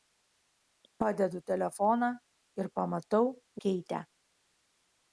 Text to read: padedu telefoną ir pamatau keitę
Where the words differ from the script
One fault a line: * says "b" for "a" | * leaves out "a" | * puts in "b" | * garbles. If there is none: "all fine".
all fine